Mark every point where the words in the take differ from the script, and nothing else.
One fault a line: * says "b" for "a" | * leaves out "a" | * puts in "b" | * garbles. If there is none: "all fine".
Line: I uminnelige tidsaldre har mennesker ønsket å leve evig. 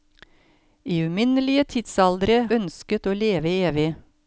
* leaves out "har mennesker"